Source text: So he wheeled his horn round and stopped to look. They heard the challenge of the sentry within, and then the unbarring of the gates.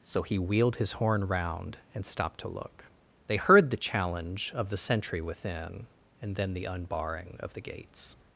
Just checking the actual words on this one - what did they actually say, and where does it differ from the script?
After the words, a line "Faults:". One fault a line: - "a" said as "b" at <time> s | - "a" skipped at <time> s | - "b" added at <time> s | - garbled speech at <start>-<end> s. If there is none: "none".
So he wheeled his horn round and stopped to look. They heard the challenge of the sentry within, and then the unbarring of the gates.
Faults:
none